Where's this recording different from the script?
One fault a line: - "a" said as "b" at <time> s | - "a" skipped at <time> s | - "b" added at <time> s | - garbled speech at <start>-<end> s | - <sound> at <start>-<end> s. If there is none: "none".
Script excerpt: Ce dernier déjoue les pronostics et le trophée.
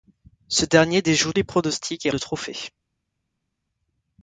none